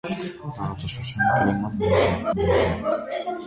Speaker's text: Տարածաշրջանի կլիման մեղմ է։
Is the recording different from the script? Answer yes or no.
yes